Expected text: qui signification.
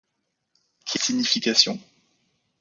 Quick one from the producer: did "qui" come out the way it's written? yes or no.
yes